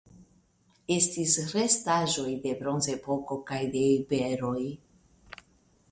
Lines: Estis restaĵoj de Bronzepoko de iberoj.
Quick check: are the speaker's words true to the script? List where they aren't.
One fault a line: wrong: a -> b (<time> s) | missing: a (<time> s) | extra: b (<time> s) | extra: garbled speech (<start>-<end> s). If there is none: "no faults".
extra: kaj (3.5 s)